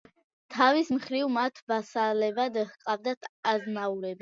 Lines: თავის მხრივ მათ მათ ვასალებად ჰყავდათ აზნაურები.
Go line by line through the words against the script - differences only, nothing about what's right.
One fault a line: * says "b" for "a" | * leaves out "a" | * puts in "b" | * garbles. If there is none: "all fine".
* leaves out "მათ"